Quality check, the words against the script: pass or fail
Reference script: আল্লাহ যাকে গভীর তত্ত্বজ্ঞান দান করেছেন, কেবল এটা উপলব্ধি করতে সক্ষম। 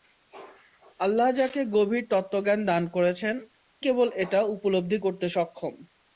pass